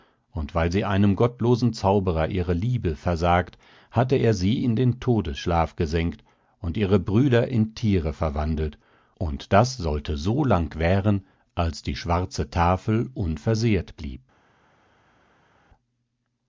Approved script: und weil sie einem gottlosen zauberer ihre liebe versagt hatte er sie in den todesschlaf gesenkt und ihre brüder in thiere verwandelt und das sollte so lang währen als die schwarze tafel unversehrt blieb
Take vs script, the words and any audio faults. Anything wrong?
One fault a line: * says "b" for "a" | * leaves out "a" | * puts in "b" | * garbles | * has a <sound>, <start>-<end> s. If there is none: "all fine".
all fine